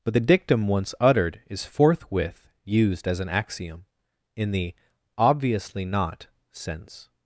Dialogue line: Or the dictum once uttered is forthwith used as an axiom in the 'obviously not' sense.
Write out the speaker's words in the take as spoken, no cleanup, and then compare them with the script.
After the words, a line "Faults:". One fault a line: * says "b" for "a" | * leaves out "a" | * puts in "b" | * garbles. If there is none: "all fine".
But the dictum once uttered is forthwith used as an axiom in the 'obviously not' sense.
Faults:
* says "But" for "Or"